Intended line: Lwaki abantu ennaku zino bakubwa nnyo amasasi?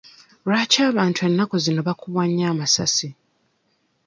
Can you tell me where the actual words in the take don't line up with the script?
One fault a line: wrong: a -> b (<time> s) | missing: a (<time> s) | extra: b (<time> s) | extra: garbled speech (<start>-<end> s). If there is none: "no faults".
no faults